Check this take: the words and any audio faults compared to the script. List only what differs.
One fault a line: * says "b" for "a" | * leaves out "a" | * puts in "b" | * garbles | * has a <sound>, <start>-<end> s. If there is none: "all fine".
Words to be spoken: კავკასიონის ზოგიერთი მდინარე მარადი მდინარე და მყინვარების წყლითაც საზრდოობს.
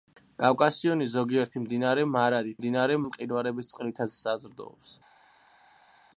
all fine